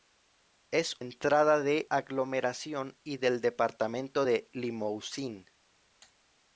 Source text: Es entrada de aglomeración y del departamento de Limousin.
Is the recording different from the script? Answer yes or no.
no